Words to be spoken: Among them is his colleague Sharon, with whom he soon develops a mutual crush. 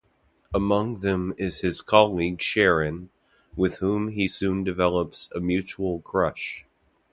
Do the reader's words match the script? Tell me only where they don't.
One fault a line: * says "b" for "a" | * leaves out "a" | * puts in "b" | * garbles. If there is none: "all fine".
all fine